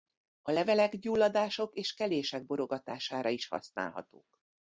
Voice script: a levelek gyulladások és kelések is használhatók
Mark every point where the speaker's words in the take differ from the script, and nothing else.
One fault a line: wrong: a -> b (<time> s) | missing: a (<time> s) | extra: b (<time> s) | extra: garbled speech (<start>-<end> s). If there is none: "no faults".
extra: borogatására (2.5 s)